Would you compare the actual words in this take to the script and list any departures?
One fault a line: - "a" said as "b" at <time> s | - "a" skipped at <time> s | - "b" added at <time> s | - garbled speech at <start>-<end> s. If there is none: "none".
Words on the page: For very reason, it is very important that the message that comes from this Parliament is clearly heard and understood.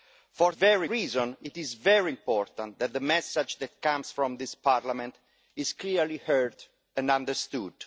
none